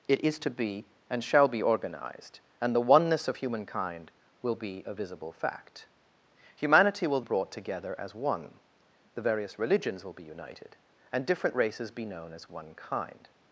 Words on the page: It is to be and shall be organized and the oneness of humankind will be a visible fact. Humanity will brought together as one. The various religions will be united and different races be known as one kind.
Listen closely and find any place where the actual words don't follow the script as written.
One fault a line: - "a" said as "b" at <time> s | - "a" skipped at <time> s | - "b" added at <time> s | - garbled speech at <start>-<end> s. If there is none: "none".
none